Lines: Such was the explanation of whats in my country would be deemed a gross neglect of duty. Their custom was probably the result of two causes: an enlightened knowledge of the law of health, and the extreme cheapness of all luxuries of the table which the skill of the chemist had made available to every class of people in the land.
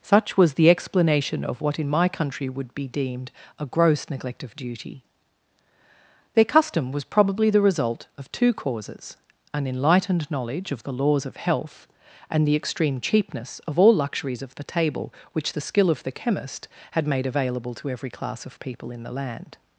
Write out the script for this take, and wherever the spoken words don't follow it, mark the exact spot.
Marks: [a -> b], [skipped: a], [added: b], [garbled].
Such was the explanation of [whats -> what] in my country would be deemed a gross neglect of duty. Their custom was probably the result of two causes: an enlightened knowledge of the [law -> laws] of health, and the extreme cheapness of all luxuries of the table which the skill of the chemist had made available to every class of people in the land.